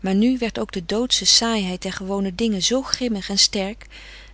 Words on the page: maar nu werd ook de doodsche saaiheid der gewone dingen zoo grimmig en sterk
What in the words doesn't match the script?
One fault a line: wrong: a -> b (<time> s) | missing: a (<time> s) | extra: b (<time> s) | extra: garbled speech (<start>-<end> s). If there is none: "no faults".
no faults